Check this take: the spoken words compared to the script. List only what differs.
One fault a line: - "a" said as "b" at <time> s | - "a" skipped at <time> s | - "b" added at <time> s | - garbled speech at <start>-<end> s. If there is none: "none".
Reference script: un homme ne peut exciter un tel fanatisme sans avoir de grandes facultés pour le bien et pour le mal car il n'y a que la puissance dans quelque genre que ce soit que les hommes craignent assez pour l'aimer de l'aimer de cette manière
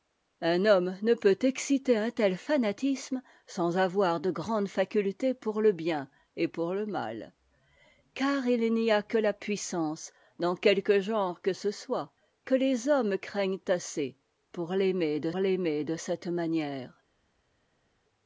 none